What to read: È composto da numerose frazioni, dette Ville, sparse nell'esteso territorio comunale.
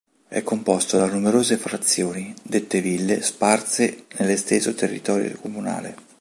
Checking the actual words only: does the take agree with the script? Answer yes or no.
yes